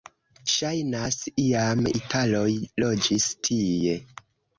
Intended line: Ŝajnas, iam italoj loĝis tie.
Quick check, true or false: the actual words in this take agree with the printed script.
true